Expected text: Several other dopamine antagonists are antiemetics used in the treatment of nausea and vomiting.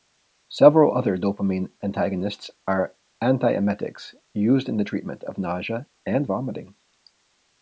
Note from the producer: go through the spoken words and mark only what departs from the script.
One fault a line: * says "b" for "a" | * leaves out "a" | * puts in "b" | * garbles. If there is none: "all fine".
all fine